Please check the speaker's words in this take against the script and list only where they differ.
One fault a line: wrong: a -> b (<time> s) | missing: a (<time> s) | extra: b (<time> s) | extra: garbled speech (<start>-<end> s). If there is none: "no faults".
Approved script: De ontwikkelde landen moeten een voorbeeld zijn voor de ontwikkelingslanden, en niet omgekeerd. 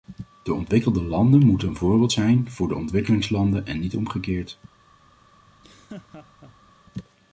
no faults